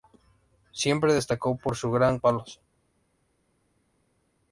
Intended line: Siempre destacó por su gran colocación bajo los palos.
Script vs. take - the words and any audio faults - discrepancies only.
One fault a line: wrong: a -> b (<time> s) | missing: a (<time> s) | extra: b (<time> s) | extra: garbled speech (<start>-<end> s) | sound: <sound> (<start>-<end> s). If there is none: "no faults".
missing: colocación bajo los (2.2 s)